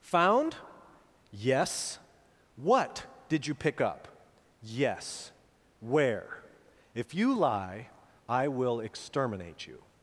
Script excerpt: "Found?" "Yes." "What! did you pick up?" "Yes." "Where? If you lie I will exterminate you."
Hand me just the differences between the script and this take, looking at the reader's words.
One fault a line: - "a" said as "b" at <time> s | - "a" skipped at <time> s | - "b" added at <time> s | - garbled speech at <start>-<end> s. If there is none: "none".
none